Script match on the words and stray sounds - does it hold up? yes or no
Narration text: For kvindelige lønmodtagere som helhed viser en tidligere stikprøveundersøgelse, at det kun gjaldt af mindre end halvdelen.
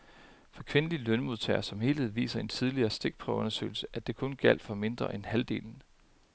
no